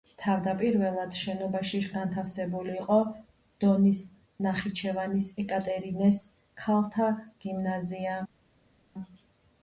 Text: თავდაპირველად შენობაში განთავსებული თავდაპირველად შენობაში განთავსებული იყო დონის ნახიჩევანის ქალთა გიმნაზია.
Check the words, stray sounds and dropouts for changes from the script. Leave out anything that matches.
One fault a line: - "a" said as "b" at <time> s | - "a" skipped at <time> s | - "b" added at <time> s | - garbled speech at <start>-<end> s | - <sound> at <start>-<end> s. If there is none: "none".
- "თავდაპირველად შენობაში განთავსებული" skipped at 2.7 s
- "ეკატერინეს" added at 5.4 s